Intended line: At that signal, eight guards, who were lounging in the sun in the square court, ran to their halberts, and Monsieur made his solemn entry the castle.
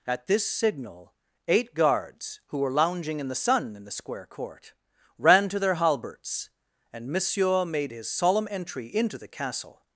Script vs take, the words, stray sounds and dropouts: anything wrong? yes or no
yes